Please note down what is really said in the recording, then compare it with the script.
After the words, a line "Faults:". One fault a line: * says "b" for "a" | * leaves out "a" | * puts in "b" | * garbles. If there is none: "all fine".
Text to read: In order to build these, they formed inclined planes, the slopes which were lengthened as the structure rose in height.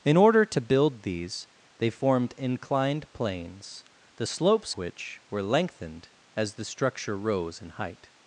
In order to build these, they formed inclined planes, the slopes which were lengthened as the structure rose in height.
Faults:
all fine